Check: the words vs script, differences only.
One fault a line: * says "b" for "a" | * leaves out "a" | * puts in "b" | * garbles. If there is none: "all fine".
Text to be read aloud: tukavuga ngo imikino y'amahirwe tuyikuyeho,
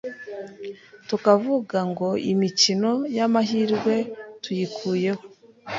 all fine